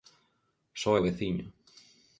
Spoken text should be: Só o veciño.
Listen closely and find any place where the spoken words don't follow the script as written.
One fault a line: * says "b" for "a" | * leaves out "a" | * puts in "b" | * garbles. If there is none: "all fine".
all fine